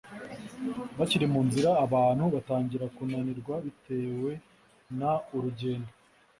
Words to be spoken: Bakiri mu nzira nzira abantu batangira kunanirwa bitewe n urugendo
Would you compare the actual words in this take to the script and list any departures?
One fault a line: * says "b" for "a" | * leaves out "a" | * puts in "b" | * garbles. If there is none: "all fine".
* leaves out "nzira"